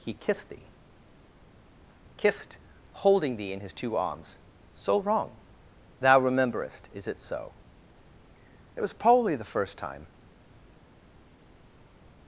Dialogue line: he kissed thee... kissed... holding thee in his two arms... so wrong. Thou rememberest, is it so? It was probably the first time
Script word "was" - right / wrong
right